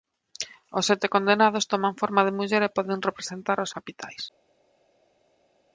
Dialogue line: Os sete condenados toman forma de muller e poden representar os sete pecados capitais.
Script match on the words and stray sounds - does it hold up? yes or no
no